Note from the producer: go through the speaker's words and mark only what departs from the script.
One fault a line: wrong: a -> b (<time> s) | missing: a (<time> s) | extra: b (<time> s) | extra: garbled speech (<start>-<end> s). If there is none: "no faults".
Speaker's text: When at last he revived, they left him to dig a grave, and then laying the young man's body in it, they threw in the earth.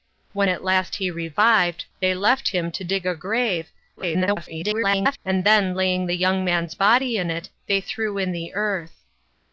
extra: garbled speech (4.0-5.2 s)